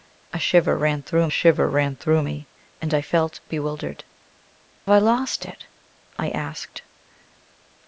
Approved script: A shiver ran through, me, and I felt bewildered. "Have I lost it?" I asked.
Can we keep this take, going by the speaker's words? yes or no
no